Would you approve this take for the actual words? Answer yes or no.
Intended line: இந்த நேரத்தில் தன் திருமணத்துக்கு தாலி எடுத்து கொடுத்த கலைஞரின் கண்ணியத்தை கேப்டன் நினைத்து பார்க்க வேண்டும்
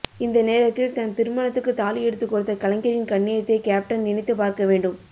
yes